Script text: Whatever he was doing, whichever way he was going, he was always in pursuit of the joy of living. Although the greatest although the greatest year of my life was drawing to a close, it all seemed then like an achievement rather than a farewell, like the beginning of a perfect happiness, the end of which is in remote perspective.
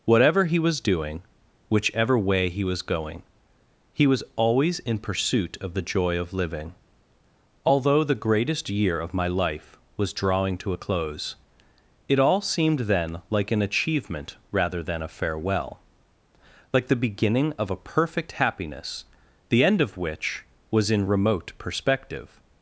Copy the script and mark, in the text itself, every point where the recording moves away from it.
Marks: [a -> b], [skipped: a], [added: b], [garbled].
Whatever he was doing, whichever way he was going, he was always in pursuit of the joy of living. Although the greatest [skipped: although the greatest] year of my life was drawing to a close, it all seemed then like an achievement rather than a farewell, like the beginning of a perfect happiness, the end of which [is -> was] in remote perspective.